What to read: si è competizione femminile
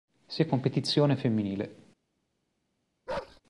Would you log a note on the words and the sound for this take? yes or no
yes